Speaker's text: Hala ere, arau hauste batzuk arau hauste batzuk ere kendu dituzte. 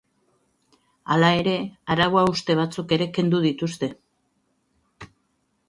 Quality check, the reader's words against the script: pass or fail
fail